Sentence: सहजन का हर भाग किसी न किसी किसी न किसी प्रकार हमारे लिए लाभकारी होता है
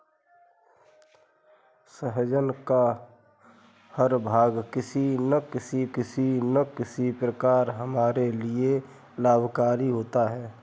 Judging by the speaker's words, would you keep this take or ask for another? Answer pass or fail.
pass